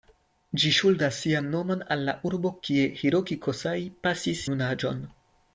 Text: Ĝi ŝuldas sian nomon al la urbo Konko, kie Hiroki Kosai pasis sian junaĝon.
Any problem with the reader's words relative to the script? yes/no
yes